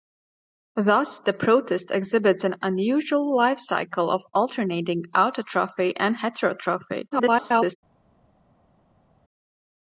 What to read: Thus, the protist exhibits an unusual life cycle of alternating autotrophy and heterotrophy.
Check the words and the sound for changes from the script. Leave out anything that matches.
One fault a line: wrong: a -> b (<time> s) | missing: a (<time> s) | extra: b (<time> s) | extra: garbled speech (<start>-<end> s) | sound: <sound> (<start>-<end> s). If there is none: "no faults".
extra: garbled speech (7.1-7.8 s)